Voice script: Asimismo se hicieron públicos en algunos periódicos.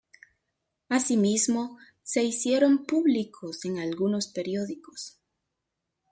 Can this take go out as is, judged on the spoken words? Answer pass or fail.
pass